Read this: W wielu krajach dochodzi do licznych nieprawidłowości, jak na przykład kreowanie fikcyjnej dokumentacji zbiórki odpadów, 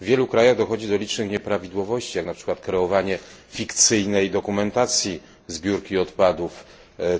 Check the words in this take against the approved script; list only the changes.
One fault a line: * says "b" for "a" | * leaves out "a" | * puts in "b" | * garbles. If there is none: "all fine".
all fine